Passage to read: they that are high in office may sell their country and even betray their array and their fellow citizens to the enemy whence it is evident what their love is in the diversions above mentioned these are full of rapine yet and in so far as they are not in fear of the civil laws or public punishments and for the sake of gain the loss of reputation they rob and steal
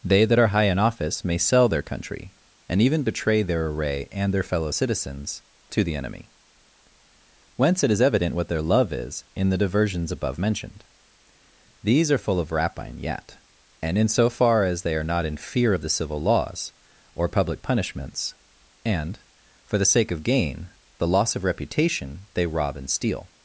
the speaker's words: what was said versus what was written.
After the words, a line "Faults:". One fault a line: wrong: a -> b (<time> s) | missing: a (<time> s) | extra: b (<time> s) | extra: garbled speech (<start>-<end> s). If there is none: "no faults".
they that are high in office may sell their country and even betray their array and their fellow citizens to the enemy whence it is evident what their love is in the diversions above mentioned these are full of rapine yet and in so far as they are not in fear of the civil laws or public punishments and for the sake of gain the loss of reputation they rob and steal
Faults:
no faults